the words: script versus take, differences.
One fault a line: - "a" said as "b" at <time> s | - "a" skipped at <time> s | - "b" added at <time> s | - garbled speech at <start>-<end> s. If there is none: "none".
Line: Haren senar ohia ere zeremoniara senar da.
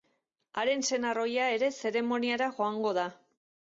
- "senar" said as "joango" at 2.6 s